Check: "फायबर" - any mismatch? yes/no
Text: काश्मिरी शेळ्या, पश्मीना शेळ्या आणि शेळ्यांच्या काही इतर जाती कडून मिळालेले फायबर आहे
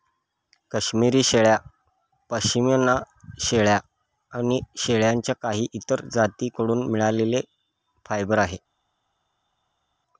no